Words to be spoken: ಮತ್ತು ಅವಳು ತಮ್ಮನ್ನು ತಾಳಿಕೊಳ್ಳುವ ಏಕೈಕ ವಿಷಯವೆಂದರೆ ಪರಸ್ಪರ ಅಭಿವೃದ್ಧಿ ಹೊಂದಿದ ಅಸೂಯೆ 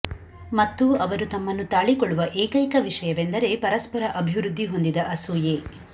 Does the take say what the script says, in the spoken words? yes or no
no